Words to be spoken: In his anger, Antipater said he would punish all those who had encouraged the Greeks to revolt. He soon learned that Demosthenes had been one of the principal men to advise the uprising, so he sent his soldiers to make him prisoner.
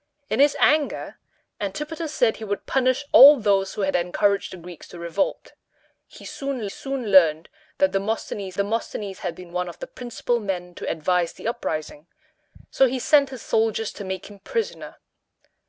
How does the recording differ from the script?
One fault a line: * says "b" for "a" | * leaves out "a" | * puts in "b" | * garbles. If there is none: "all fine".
* puts in "soon"
* puts in "Demosthenes"